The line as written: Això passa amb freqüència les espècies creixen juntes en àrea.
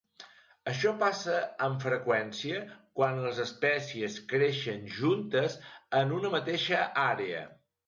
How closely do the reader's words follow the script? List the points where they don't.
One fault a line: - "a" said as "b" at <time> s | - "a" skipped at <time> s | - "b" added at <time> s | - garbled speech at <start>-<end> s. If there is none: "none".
- "quan" added at 3.0 s
- "una mateixa" added at 6.2 s